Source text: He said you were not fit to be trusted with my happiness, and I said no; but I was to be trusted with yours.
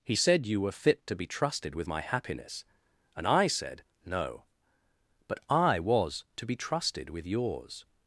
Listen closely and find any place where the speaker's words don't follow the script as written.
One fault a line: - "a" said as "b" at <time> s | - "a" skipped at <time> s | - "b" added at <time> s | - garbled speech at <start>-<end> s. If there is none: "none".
- "not" skipped at 0.7 s